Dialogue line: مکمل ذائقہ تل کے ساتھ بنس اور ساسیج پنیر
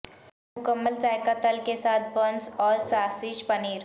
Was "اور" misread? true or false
false